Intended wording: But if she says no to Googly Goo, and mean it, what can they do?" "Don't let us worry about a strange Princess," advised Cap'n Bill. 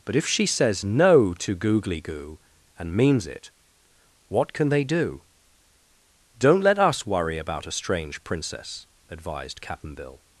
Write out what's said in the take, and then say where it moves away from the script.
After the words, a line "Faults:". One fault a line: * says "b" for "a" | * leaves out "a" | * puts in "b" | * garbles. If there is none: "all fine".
But if she says no to Googly Goo, and means it, what can they do?" "Don't let us worry about a strange Princess," advised Cap'n Bill.
Faults:
* says "means" for "mean"